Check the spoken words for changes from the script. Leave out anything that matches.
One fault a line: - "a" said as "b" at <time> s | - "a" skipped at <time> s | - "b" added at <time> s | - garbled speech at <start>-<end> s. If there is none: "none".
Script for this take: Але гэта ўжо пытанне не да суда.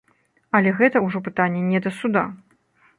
none